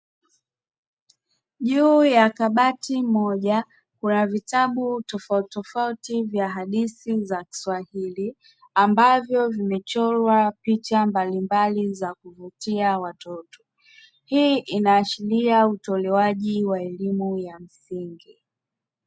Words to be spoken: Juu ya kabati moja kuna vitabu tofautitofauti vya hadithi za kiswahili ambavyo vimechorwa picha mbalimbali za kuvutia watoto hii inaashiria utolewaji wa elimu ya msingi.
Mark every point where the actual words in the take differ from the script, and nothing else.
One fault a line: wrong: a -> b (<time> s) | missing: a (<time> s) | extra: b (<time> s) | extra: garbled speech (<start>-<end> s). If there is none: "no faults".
no faults